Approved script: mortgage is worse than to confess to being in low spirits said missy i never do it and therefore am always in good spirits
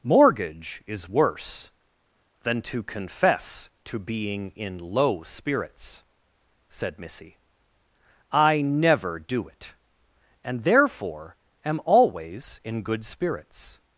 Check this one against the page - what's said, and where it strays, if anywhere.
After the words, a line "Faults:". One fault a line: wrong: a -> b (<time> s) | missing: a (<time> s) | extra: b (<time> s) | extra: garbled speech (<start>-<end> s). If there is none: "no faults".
mortgage is worse than to confess to being in low spirits said missy i never do it and therefore am always in good spirits
Faults:
no faults